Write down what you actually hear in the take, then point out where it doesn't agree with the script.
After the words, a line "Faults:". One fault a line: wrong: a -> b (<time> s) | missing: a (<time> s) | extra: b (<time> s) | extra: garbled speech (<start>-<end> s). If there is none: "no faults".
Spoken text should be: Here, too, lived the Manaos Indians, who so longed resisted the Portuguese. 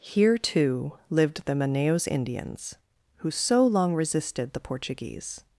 Here, too, lived the Manaos Indians, who so long resisted the Portuguese.
Faults:
wrong: longed -> long (3.7 s)